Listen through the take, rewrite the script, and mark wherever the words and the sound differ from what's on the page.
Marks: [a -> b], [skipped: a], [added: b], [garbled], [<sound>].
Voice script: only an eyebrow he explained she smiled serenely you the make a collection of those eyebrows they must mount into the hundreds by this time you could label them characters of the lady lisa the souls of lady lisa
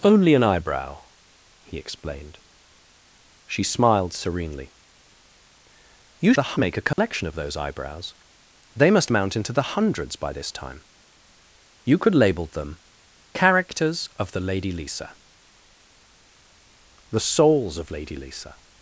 only an eyebrow he explained she smiled serenely you the make a collection [dropout] of those eyebrows they must mount into the hundreds by this time you could label them characters of the lady lisa the souls of lady lisa